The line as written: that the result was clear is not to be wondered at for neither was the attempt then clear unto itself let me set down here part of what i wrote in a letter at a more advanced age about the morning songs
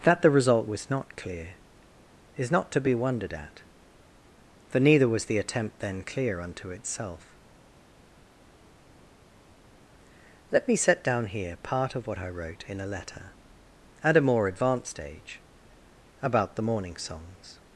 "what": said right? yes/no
yes